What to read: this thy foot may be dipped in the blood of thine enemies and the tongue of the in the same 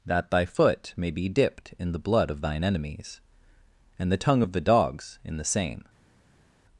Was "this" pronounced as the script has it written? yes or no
no